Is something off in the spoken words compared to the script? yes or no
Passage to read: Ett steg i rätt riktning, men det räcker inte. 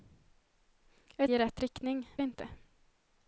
yes